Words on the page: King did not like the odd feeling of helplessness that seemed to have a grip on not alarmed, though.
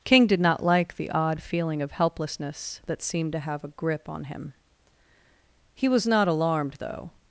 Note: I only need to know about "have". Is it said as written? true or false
true